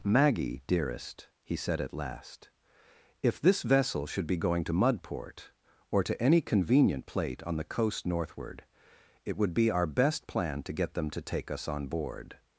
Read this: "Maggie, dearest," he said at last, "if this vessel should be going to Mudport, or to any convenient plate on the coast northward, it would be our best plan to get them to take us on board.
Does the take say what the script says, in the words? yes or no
yes